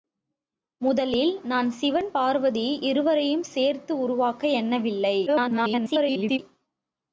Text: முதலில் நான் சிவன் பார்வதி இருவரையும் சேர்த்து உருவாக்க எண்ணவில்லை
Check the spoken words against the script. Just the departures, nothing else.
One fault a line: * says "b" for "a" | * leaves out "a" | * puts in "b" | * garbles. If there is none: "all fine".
* garbles